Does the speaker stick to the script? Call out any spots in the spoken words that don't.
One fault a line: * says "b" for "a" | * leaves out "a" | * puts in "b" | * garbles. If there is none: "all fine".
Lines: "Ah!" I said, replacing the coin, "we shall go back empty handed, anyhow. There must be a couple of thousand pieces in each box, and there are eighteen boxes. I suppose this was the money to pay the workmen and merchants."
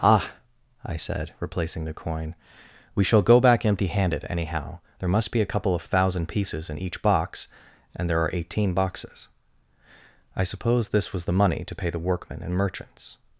all fine